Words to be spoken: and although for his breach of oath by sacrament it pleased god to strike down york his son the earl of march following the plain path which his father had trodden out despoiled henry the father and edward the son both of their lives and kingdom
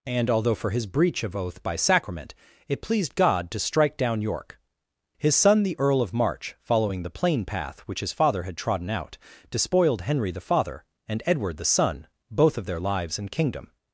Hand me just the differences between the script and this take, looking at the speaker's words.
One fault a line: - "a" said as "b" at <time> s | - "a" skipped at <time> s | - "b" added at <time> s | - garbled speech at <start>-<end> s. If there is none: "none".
none